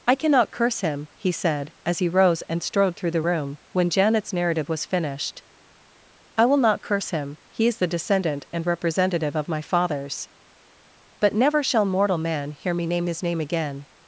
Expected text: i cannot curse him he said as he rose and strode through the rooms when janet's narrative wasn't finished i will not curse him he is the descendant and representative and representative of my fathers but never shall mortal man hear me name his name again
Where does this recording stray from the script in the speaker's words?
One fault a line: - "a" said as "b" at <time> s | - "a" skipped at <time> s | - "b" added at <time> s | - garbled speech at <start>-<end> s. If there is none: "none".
- "rooms" said as "room" at 3.2 s
- "wasn't" said as "was" at 4.7 s
- "and representative" skipped at 9.3 s